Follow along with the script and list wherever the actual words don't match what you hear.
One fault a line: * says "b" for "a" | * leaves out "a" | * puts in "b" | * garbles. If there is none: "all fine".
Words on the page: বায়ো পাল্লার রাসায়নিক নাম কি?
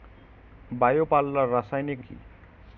* leaves out "নাম"